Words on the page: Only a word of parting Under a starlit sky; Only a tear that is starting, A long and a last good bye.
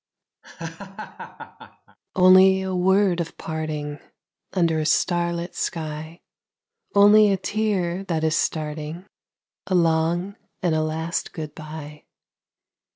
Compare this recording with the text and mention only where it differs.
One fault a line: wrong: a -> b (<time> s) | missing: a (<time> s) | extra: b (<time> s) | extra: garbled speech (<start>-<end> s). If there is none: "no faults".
no faults